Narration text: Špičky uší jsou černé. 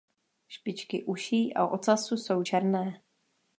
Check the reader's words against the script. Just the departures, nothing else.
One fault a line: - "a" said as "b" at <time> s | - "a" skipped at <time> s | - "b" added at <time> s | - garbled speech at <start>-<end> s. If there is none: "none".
- "a ocasu" added at 1.5 s